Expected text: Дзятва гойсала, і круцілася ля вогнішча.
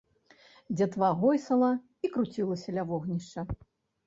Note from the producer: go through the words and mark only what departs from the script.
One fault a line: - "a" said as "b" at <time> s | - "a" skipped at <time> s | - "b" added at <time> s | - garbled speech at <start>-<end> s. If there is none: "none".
none